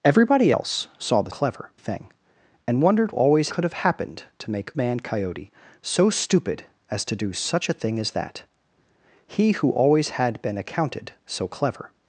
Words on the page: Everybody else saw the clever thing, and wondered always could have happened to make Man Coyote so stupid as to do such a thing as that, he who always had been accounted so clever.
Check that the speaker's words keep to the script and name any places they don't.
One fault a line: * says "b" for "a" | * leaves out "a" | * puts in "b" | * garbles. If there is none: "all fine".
all fine